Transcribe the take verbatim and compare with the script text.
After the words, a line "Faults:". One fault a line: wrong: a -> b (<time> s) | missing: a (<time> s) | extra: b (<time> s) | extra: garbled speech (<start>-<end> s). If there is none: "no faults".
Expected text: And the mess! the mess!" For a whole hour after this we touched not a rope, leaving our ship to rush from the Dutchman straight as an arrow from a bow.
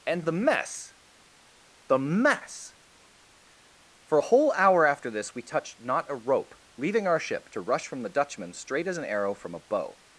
And the mess! the mess!" For a whole hour after this we touched not a rope, leaving our ship to rush from the Dutchman straight as an arrow from a bow.
Faults:
no faults